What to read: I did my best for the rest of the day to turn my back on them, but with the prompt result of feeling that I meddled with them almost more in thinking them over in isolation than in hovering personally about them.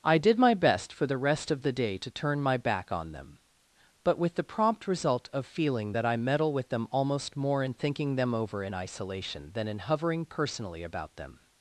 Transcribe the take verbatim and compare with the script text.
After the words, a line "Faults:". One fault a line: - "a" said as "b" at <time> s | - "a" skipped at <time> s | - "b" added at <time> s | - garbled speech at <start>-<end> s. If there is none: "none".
I did my best for the rest of the day to turn my back on them, but with the prompt result of feeling that I meddle with them almost more in thinking them over in isolation than in hovering personally about them.
Faults:
- "meddled" said as "meddle" at 6.2 s